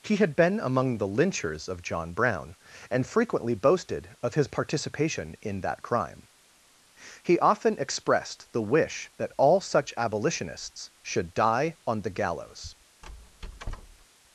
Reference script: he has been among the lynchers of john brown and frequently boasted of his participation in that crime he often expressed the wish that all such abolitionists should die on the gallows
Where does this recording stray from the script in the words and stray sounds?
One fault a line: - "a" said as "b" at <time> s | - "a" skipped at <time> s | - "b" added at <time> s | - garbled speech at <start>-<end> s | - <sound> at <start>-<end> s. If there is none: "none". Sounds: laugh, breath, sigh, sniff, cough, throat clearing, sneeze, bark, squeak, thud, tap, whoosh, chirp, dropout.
- "has" said as "had" at 0.1 s
- squeak at 13.0-14.1 s